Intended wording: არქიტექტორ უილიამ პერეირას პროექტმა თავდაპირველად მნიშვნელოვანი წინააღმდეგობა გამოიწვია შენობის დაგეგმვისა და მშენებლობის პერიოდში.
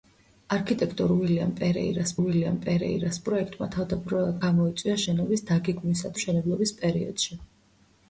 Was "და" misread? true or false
true